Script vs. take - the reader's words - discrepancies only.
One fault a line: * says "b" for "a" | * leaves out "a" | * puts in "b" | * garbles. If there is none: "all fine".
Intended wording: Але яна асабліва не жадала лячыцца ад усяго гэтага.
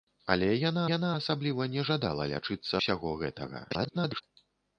* puts in "яна"
* leaves out "ад"
* garbles